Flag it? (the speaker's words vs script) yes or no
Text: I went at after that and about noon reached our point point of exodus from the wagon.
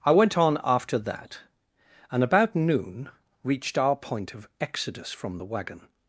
yes